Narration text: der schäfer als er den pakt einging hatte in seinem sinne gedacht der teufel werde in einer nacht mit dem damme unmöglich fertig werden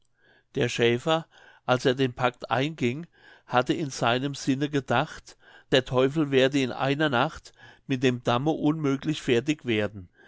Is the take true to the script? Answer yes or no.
yes